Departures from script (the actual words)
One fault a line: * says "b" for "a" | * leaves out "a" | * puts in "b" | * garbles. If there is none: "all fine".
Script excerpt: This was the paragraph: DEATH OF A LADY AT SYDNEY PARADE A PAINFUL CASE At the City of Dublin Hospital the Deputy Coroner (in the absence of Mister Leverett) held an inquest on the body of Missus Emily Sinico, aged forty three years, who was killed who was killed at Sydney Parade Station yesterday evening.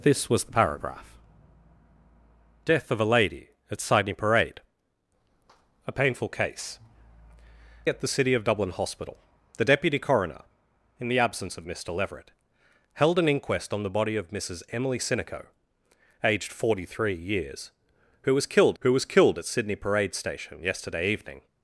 all fine